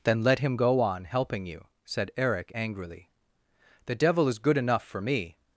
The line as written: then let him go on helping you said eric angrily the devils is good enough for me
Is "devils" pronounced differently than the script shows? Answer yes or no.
yes